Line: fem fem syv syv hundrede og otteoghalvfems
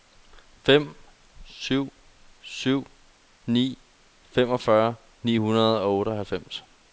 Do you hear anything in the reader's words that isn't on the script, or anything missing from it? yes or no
yes